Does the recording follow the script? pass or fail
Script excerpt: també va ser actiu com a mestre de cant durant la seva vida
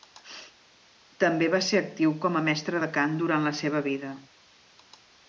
pass